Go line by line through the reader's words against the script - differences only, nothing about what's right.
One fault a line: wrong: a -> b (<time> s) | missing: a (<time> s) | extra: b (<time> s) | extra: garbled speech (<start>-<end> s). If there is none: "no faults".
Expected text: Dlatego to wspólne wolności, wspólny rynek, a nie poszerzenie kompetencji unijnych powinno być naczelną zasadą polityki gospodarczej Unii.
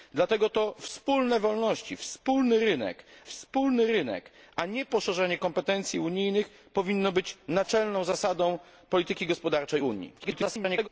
extra: wspólny rynek (3.3 s)
extra: garbled speech (10.2-10.9 s)